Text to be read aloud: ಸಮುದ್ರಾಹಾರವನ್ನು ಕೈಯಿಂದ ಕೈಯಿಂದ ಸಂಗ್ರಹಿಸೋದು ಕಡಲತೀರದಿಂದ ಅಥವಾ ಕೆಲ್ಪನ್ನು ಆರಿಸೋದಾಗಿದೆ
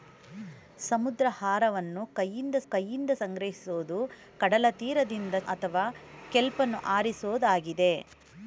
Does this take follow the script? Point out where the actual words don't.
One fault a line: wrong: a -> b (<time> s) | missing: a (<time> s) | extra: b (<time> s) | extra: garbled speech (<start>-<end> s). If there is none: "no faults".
no faults